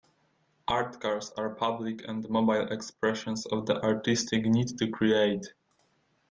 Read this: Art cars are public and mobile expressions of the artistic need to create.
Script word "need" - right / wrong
right